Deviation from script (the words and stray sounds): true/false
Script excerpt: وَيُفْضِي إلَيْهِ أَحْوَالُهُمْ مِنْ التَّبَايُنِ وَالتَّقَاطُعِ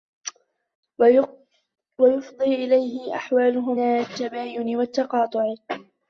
true